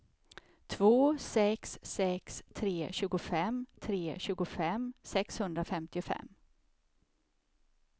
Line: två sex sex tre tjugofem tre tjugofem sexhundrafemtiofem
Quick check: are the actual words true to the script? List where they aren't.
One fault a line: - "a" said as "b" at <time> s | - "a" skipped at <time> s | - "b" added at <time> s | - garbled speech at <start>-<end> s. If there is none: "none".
none